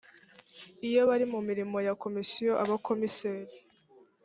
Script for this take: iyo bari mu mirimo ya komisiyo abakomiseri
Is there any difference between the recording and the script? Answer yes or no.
no